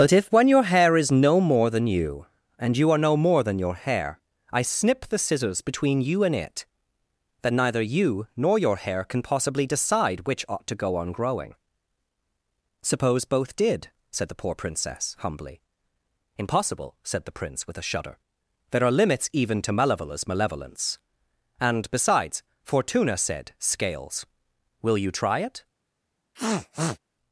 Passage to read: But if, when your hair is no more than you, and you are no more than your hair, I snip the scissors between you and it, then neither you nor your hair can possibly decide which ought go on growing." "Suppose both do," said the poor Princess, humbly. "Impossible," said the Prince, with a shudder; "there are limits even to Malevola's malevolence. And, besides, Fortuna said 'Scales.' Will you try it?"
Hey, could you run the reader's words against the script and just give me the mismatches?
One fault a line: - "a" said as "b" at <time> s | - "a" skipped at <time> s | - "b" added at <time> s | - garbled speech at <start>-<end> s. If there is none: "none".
- "to" added at 10.7 s
- "do" said as "did" at 13.6 s